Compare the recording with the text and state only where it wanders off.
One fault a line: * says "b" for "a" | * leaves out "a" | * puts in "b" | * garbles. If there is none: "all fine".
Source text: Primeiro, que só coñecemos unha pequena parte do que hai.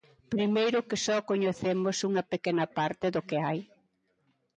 all fine